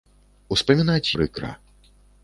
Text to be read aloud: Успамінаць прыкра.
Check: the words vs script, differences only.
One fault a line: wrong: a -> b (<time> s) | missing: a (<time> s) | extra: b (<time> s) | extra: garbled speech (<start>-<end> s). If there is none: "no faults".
no faults